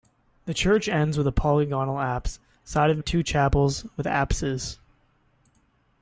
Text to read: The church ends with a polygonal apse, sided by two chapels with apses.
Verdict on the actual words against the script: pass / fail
fail